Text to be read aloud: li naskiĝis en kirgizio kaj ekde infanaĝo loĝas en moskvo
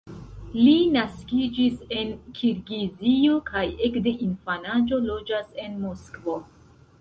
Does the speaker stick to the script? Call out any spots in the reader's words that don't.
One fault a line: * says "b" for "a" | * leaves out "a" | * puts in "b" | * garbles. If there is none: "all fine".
all fine